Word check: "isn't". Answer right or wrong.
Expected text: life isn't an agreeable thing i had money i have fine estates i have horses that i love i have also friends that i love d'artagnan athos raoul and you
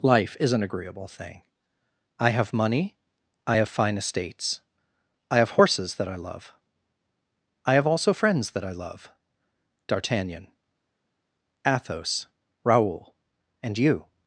wrong